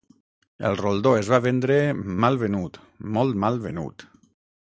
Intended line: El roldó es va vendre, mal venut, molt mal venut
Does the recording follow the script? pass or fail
pass